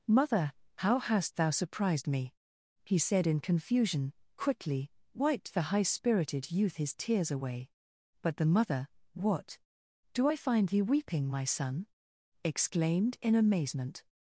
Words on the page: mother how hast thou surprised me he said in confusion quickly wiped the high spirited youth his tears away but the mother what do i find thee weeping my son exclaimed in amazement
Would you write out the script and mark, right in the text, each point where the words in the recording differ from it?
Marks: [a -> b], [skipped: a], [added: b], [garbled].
mother how hast thou surprised me he said in confusion quickly wiped the high spirited youth his tears away but the mother what do i find thee weeping my son exclaimed in amazement